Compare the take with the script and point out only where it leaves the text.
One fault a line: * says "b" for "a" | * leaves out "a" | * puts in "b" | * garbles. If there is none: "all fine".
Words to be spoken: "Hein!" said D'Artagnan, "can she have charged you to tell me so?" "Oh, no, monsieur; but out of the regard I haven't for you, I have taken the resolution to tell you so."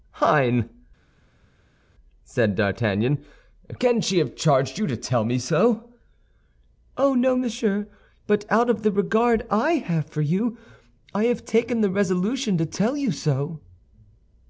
* says "have" for "haven't"